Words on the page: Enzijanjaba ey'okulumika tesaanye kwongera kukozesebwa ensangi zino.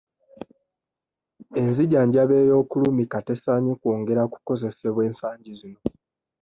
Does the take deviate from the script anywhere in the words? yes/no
no